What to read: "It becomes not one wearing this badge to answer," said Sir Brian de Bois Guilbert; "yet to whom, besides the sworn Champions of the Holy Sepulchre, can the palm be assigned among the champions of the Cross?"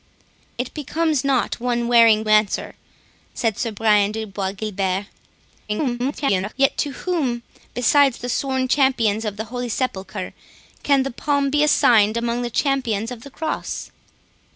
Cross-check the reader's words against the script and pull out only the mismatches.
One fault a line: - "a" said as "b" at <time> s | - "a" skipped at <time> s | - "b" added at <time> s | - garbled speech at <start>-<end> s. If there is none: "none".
- "this badge to" skipped at 2.2 s
- garbled speech at 5.7-6.5 s